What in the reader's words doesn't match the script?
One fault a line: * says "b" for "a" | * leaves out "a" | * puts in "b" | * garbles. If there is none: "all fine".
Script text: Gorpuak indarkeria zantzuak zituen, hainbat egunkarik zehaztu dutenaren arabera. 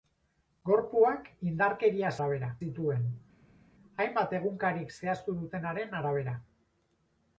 * says "arabera" for "zantzuak"